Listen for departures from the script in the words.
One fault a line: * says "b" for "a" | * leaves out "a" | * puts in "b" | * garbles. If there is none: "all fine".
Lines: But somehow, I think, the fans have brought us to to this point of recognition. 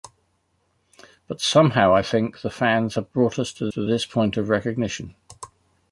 all fine